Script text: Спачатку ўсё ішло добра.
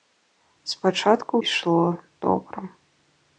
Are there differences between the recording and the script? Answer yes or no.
yes